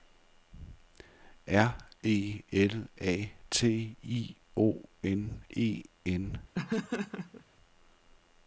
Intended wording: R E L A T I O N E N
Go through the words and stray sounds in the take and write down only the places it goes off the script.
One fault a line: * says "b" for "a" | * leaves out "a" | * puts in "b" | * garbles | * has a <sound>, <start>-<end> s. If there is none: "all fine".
* has a laugh, 6.5-7.4 s